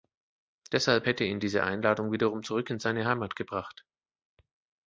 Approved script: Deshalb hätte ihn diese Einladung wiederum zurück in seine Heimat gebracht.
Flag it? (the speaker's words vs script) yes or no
no